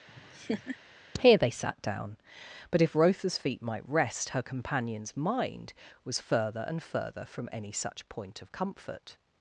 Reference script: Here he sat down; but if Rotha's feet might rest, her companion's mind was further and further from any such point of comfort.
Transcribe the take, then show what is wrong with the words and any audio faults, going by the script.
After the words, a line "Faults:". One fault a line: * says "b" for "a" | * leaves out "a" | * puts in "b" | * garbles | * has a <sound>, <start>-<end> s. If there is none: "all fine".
Here they sat down; but if Rotha's feet might rest, her companion's mind was further and further from any such point of comfort.
Faults:
* has a laugh, 0.1-0.8 s
* says "they" for "he"